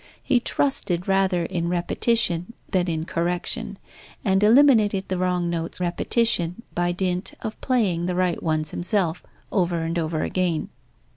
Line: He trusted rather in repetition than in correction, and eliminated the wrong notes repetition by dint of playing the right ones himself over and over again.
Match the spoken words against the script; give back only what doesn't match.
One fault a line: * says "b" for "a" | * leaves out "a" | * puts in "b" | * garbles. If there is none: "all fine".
all fine